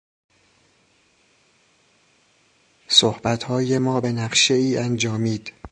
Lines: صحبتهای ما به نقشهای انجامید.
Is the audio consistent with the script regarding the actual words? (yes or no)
yes